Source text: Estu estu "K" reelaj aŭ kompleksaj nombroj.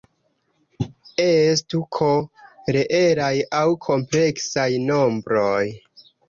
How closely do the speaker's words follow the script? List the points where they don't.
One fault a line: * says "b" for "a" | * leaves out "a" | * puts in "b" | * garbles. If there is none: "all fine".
* leaves out "estu"